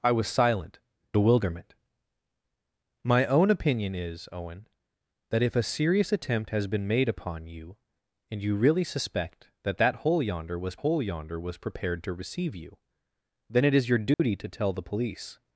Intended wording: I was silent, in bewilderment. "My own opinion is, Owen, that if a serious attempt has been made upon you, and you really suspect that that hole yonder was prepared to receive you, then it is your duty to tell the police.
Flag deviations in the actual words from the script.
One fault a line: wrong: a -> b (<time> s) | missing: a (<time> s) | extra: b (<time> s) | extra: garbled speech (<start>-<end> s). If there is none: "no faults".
missing: in (0.8 s)
extra: hole yonder was (10.8 s)